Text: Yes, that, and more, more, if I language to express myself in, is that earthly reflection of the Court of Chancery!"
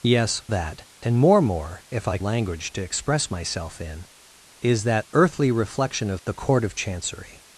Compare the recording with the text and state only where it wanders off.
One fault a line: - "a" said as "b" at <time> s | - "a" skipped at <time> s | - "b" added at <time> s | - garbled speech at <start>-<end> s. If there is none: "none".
none